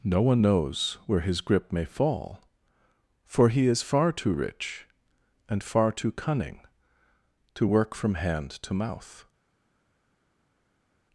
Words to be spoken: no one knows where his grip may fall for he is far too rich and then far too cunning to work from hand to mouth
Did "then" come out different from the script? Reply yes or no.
yes